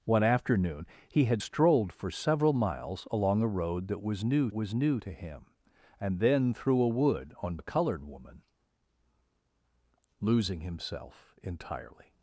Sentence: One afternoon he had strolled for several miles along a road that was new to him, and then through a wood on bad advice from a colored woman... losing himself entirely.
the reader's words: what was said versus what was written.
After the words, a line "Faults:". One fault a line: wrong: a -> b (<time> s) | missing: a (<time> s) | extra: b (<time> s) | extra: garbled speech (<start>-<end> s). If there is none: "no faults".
One afternoon he had strolled for several miles along a road that was new was new to him, and then through a wood on a colored woman... losing himself entirely.
Faults:
extra: was new (4.5 s)
missing: bad advice from (7.6 s)